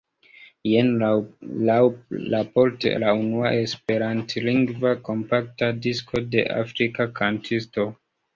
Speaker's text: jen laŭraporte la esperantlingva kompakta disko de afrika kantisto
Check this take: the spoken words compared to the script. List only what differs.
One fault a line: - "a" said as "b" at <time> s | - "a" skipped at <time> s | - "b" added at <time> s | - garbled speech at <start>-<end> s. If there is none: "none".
- "unua" added at 3.2 s